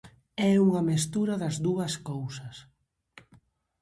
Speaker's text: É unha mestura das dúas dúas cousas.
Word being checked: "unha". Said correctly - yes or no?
yes